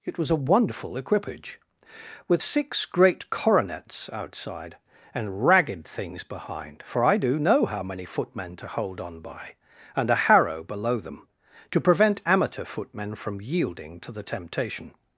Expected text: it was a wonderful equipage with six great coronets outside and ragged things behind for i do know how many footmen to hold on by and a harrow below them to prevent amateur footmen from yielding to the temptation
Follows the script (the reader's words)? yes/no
yes